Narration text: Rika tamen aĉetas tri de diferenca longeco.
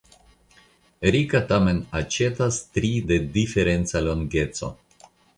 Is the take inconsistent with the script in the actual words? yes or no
no